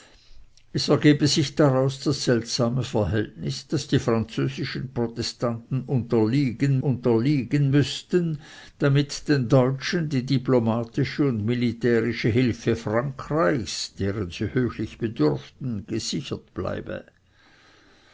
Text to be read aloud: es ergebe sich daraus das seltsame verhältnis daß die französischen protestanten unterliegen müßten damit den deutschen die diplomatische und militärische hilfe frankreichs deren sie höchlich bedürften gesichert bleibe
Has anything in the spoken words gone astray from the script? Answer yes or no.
yes